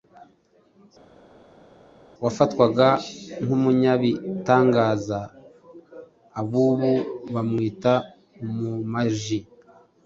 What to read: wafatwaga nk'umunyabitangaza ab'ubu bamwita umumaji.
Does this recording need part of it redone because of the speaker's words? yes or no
no